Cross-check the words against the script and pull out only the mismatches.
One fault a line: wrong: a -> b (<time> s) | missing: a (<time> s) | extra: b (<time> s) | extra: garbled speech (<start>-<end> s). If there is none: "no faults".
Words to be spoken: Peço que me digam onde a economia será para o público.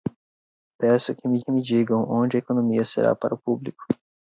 extra: que me (1.4 s)